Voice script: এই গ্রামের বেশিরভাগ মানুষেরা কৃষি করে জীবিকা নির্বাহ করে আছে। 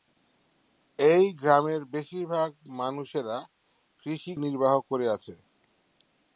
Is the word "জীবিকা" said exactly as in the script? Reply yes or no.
no